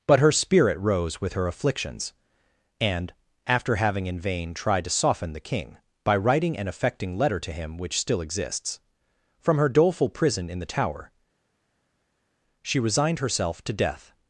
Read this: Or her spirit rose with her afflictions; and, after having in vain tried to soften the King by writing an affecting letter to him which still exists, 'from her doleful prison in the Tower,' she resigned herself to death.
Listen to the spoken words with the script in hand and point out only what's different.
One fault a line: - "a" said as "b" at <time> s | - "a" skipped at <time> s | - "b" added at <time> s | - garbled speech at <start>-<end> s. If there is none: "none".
- "Or" said as "But" at 0.1 s